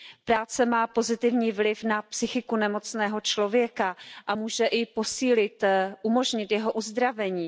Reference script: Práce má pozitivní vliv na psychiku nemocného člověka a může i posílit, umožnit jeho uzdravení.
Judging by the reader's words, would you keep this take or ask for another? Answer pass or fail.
pass